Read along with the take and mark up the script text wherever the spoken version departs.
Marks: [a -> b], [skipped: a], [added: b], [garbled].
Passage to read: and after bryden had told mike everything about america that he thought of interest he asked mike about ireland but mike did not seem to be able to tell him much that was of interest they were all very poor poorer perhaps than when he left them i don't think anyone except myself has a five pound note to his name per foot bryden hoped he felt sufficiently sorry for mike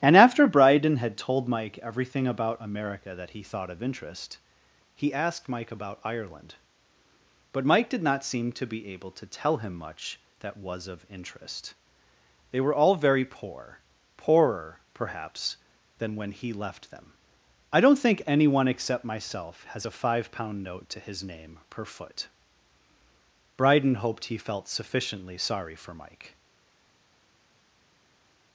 and after bryden had told mike everything about america that he thought of interest he asked mike about ireland but mike did not seem to be able to tell him much that was of interest they were all very poor poorer perhaps than when he left them i don't think anyone except myself has a five pound note to his name per foot bryden hoped he felt sufficiently sorry for mike